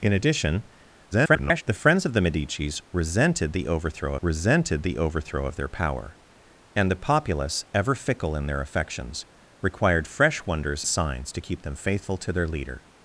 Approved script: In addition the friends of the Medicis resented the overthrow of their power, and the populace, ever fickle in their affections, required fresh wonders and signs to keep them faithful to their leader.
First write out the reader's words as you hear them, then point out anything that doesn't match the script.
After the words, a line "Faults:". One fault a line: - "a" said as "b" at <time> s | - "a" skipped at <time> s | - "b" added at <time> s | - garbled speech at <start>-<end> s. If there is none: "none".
In addition [garbled] the friends of the Medicis resented the overthrow resented the overthrow of their power, and the populace, ever fickle in their affections, required fresh wonders signs to keep them faithful to their leader.
Faults:
- garbled speech at 1.1-1.6 s
- "resented the overthrow" added at 4.2 s
- "and" skipped at 10.8 s